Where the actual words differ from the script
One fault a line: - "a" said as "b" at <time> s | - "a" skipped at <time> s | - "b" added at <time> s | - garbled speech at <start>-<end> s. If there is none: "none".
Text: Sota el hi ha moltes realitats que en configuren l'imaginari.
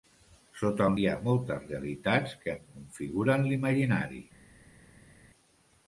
none